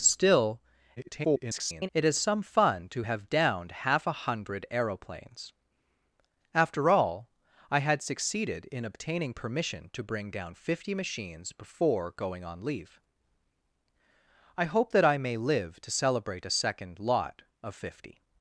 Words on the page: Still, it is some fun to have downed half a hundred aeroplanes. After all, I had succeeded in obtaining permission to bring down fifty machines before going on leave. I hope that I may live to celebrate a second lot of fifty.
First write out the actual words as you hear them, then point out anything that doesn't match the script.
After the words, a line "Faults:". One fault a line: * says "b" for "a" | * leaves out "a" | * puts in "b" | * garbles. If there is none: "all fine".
Still, [garbled] it is some fun to have downed half a hundred aeroplanes. After all, I had succeeded in obtaining permission to bring down fifty machines before going on leave. I hope that I may live to celebrate a second lot of fifty.
Faults:
* garbles